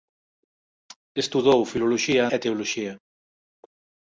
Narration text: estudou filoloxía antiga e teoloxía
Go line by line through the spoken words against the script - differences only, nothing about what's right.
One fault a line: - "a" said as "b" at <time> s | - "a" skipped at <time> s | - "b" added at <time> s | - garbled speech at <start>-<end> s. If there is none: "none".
- "antiga" skipped at 2.2 s